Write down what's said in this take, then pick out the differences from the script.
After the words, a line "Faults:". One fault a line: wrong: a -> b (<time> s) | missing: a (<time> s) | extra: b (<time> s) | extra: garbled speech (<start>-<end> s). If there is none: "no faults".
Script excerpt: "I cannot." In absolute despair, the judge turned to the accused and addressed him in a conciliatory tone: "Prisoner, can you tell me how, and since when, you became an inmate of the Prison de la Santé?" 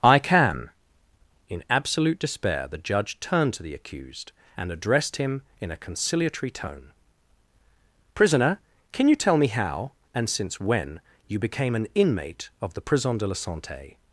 "I can." In absolute despair, the judge turned to the accused and addressed him in a conciliatory tone: "Prisoner, can you tell me how, and since when, you became an inmate of the Prison de la Santé?"
Faults:
wrong: cannot -> can (0.2 s)